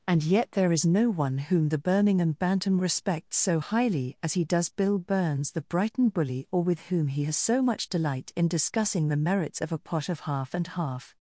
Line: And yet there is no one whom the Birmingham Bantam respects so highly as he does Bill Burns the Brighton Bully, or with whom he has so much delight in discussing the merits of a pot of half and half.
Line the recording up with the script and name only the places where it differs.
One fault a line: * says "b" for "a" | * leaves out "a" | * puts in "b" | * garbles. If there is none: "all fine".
all fine